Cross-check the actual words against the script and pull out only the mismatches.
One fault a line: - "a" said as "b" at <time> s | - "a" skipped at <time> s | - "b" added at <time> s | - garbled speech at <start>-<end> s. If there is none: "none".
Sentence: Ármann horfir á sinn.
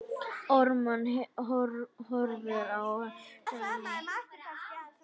none